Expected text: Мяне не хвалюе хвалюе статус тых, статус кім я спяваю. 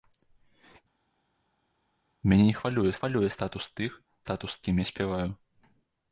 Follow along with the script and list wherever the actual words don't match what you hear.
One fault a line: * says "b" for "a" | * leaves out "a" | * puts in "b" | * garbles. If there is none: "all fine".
all fine